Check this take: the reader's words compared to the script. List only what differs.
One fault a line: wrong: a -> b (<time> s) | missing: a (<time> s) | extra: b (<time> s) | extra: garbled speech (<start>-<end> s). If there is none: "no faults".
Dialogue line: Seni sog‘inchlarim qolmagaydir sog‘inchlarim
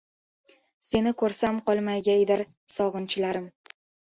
wrong: sog‘inchlarim -> ko‘rsam (1.2 s)